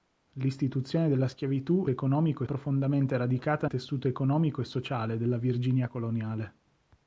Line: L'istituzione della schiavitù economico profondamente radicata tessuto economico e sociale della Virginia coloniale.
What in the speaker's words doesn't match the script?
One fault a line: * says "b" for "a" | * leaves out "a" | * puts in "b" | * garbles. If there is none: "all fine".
all fine